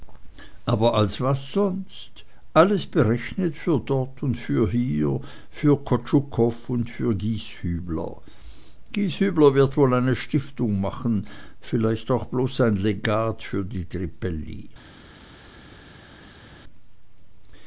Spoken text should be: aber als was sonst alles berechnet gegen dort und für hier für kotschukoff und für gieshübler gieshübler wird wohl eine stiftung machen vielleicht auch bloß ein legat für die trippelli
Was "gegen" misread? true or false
true